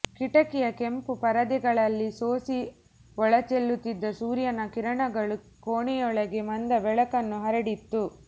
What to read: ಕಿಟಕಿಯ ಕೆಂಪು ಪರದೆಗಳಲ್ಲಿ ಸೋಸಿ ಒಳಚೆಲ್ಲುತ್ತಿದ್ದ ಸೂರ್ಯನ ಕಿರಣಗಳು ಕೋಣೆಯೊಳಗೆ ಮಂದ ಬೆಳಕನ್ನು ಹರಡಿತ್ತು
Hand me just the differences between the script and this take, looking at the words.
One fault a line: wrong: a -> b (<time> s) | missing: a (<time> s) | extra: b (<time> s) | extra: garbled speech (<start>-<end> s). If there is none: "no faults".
no faults